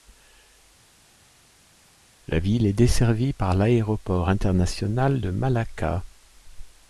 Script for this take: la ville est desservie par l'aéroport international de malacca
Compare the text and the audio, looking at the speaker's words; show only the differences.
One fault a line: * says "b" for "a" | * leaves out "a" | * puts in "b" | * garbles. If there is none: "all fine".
all fine